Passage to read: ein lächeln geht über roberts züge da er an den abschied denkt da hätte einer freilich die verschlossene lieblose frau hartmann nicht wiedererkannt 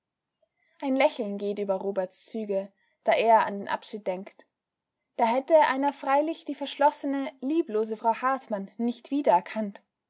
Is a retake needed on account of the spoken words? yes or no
no